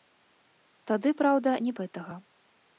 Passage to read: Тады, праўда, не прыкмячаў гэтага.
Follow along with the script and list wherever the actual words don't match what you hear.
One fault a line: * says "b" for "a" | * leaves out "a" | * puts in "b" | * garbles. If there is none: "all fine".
* leaves out "прыкмячаў"